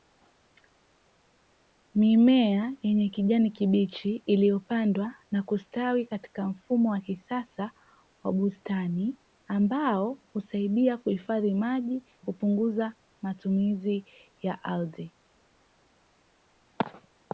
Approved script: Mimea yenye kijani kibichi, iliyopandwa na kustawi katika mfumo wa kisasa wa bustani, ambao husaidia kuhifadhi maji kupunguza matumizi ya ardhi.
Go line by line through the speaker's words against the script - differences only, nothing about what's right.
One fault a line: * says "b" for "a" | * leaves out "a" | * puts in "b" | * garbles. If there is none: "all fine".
all fine